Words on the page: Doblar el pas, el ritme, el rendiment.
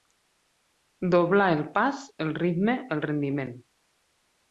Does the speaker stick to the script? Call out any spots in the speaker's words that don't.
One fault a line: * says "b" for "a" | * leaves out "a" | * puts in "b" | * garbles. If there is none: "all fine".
all fine